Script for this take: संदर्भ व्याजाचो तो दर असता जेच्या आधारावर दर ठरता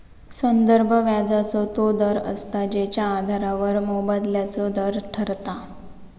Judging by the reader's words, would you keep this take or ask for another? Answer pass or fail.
fail